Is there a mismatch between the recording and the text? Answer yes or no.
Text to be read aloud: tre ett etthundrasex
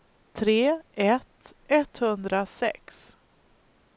no